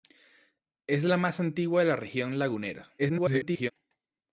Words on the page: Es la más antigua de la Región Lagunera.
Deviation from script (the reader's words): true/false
true